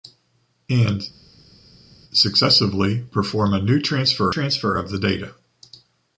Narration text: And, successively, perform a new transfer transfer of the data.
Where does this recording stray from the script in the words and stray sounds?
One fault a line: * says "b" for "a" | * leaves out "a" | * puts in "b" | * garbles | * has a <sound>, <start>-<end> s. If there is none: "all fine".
all fine